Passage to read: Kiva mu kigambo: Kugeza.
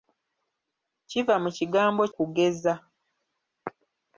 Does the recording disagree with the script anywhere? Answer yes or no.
no